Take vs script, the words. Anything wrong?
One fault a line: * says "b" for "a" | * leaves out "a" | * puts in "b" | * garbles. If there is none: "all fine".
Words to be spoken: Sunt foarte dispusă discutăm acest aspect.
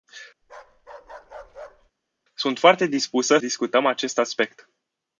all fine